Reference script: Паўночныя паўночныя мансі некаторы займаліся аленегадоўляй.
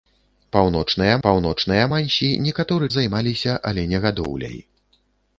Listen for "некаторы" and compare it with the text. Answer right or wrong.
right